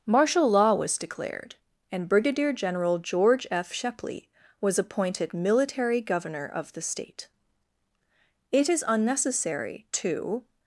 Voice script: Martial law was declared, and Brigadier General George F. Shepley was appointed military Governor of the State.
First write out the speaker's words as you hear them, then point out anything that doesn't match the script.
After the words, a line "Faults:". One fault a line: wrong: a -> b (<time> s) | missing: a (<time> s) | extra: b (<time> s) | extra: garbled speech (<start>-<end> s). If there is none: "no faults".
Martial law was declared, and Brigadier General George F. Shepley was appointed military Governor of the State. It is unnecessary to
Faults:
extra: It is unnecessary to (8.5 s)